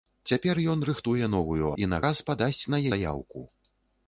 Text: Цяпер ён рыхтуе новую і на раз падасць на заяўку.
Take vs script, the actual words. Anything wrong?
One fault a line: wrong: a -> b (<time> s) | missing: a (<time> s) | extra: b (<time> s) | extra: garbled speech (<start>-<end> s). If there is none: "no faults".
no faults